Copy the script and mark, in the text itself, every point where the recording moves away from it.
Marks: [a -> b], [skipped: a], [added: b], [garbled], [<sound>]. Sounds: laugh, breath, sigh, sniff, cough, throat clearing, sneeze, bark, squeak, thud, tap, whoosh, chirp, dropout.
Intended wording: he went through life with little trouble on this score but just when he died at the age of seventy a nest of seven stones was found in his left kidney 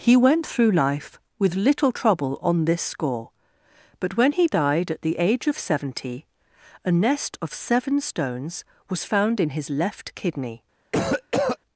he went through life with little trouble on this score but [skipped: just] when he died at the age of seventy a nest of seven stones was found in his left kidney [cough]